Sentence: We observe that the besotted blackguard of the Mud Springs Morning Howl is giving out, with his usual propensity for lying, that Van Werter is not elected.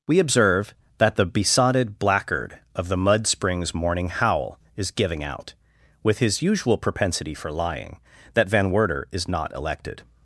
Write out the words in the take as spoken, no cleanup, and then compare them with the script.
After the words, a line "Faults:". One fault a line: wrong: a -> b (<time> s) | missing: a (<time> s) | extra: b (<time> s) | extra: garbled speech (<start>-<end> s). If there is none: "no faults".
We observe that the besotted blackguard of the Mud Springs Morning Howl is giving out, with his usual propensity for lying, that Van Werter is not elected.
Faults:
no faults